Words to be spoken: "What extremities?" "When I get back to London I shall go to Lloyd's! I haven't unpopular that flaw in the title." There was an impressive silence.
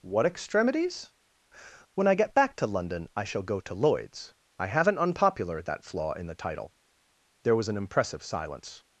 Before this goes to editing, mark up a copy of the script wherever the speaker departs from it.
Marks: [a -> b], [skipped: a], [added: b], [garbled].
"What extremities?" "When I get back to London I shall go to Lloyd's! I haven't unpopular that flaw in the title." There was an impressive silence.